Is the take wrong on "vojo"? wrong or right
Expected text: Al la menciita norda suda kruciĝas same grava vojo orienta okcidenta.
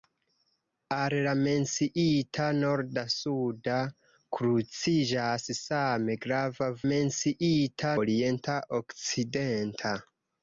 wrong